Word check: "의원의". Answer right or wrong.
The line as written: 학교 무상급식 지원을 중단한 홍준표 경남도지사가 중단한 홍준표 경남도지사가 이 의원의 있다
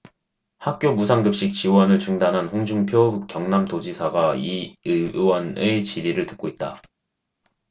wrong